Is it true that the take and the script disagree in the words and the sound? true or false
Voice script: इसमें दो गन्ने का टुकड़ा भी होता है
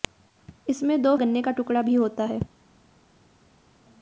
false